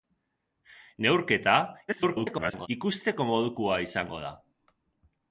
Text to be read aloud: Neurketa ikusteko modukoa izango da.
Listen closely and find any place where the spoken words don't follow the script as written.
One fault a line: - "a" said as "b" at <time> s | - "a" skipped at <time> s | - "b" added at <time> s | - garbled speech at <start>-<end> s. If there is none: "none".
- garbled speech at 1.9-2.7 s